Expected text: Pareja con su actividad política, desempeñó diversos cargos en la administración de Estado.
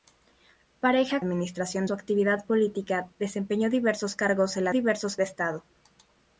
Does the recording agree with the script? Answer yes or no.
no